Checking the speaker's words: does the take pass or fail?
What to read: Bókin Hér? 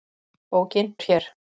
pass